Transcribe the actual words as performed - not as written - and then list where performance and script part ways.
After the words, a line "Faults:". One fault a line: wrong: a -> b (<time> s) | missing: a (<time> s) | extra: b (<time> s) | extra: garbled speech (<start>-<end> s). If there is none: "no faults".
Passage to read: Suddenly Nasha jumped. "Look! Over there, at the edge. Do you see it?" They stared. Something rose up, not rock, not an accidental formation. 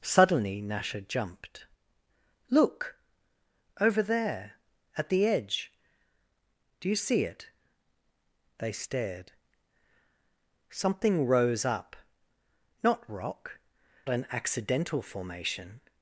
Suddenly Nasha jumped. "Look! Over there, at the edge. Do you see it?" They stared. Something rose up, not rock, an accidental formation.
Faults:
missing: not (13.6 s)